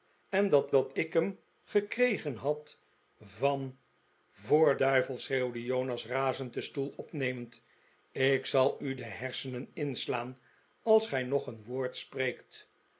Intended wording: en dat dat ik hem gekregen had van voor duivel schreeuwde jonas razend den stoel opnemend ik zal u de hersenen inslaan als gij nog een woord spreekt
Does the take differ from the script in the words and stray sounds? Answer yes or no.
no